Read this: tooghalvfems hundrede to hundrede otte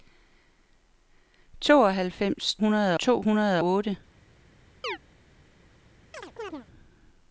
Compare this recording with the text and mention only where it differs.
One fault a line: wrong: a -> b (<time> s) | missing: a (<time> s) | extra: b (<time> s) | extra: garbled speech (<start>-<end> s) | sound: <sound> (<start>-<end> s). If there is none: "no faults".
sound: chirp (4.8-5.0 s)
sound: chirp (6.1-6.7 s)